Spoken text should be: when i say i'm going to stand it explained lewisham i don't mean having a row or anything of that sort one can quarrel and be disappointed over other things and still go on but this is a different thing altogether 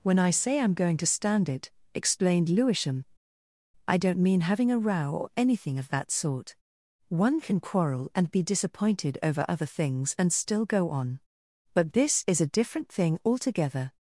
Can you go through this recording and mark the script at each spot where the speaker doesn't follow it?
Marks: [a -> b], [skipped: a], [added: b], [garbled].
when i say i'm going to stand it explained lewisham i don't mean having a row or anything of that sort one can quarrel and be disappointed over other things and still go on but this is a different thing altogether